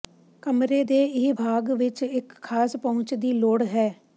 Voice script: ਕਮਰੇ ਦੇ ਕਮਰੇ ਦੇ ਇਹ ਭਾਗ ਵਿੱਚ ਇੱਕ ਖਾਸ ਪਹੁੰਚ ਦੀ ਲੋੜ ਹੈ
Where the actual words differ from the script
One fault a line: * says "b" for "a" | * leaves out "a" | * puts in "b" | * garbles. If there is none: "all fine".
* leaves out "ਕਮਰੇ ਦੇ"